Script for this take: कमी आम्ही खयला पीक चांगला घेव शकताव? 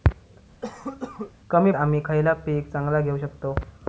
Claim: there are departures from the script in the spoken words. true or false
false